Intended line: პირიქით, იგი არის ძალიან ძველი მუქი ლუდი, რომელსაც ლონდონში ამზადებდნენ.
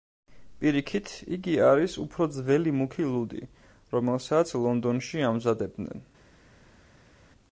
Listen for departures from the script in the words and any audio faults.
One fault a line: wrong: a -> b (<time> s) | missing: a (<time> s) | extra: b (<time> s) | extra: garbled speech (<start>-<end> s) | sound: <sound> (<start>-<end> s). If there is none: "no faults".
wrong: ძალიან -> უფრო (2.0 s)